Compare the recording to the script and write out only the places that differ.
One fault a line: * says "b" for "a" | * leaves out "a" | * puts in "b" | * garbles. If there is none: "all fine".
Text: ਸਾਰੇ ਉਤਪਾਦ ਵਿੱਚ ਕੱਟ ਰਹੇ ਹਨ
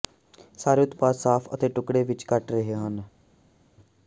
* puts in "ਸਾਫ਼ ਅਤੇ ਟੁਕੜੇ"